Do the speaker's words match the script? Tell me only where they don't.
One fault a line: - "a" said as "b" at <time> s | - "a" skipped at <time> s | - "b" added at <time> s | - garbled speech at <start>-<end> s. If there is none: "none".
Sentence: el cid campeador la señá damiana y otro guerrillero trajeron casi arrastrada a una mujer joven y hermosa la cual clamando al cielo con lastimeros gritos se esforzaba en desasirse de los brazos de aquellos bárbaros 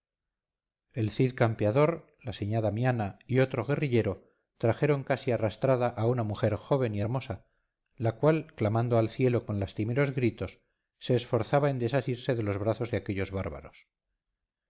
none